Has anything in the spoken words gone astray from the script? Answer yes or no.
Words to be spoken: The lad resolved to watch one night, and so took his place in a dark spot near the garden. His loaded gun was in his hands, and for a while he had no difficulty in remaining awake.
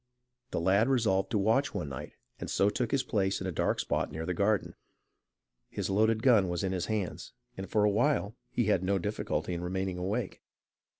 no